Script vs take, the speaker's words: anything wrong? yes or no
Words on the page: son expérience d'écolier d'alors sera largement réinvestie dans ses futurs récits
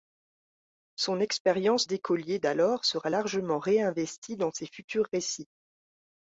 no